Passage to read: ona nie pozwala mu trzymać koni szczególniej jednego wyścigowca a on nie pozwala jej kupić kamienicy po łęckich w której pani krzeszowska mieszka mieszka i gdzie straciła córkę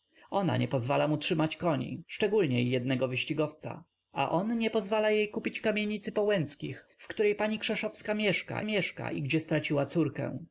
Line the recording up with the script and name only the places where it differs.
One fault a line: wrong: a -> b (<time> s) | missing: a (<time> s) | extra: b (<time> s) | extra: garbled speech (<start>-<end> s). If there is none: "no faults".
no faults